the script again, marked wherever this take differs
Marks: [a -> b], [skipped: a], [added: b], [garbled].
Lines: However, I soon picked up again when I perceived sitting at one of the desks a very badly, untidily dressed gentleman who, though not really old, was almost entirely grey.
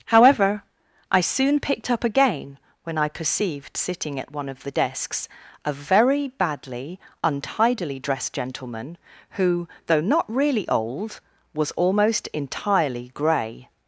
However, I soon picked up again when I perceived sitting at one of the desks a very badly, untidily dressed gentleman who, though not really old, was almost entirely grey.